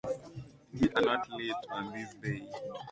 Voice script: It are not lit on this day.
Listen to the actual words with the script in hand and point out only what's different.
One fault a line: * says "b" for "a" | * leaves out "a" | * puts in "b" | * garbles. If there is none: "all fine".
all fine